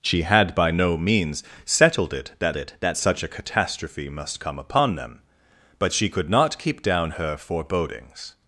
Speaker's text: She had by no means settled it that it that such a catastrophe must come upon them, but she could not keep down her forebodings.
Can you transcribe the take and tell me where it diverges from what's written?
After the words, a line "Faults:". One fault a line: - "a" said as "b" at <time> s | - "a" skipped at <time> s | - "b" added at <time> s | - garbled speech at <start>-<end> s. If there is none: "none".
She had by no means settled it that it that such a catastrophe must come upon them, but she could not keep down her forebodings.
Faults:
none